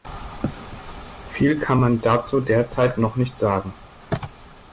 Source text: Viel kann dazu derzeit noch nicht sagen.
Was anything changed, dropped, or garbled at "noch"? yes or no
no